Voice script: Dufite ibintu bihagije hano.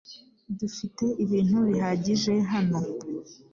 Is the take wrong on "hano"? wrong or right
right